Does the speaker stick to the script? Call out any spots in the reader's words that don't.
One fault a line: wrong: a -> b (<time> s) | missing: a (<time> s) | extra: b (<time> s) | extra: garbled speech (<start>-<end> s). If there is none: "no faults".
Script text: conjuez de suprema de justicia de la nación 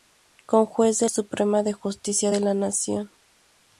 no faults